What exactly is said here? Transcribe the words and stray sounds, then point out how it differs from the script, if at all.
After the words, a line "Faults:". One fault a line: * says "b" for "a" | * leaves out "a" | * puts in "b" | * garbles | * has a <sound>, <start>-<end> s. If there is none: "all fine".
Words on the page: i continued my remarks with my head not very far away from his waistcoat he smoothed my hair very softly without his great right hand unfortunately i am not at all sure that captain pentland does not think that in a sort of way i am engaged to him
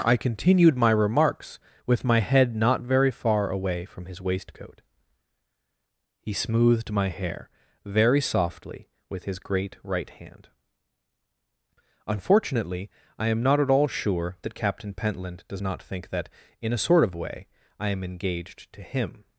i continued my remarks with my head not very far away from his waistcoat he smoothed my hair very softly with his great right hand unfortunately i am not at all sure that captain pentland does not think that in a sort of way i am engaged to him
Faults:
* says "with" for "without"